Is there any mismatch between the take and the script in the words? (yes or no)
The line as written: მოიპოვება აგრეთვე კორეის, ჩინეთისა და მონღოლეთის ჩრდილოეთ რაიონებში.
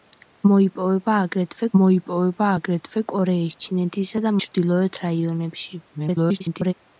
yes